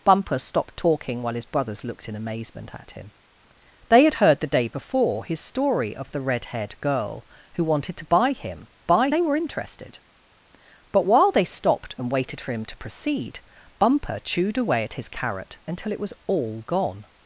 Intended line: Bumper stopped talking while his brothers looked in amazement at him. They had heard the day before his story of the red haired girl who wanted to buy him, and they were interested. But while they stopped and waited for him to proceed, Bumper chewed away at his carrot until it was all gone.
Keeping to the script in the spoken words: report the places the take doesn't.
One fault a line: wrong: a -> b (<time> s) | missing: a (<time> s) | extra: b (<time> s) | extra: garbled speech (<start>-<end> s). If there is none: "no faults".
wrong: and -> buy (8.8 s)